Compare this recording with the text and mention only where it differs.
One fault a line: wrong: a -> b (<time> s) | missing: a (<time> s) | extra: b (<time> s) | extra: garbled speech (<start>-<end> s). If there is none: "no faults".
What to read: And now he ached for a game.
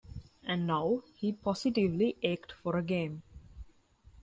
extra: positively (1.3 s)